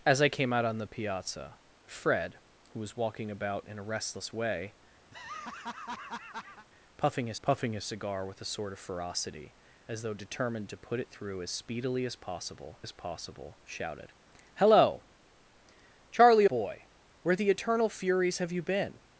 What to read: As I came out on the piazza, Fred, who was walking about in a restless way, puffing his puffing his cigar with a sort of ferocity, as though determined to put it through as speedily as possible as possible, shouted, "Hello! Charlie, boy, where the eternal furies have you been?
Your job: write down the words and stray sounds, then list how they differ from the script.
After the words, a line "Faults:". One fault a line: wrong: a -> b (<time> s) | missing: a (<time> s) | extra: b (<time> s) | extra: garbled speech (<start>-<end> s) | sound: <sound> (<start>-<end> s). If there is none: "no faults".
As I came out on the piazza, Fred, who was walking about in a restless way, puffing his puffing his cigar with a sort of ferocity, as though determined to put it through as speedily as possible as possible, shouted, "Hello! Charlie, boy, where the eternal furies have you been?
Faults:
sound: laugh (5.1-6.7 s)